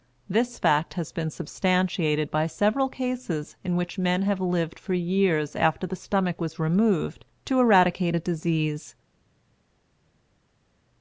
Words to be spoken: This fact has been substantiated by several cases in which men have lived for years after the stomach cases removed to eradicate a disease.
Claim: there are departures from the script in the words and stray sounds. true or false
true